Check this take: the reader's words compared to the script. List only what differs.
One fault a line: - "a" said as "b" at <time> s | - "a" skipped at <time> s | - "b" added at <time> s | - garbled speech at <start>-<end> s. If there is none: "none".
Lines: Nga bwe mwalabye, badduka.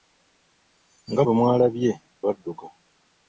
none